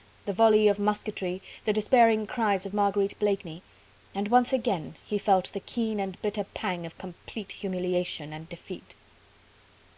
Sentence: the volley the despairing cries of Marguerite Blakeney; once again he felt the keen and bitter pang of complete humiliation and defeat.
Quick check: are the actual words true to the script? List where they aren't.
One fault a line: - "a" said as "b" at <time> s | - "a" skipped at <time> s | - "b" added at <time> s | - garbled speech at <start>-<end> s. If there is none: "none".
- "of musketry" added at 0.7 s
- "and" added at 4.2 s